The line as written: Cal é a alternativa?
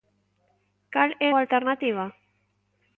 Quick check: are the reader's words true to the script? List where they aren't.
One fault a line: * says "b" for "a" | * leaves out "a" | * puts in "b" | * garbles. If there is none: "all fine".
all fine